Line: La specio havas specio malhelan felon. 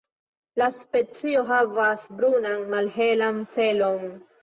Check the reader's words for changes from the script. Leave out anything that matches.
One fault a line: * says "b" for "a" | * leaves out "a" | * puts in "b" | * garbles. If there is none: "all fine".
* says "brunan" for "specio"